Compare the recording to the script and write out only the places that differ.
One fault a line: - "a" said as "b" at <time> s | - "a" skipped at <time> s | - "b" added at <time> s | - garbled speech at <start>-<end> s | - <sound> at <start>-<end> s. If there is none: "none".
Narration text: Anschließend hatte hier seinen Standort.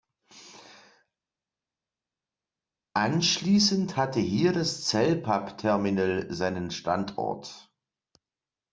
- "das Cellpapp Terminal" added at 4.5 s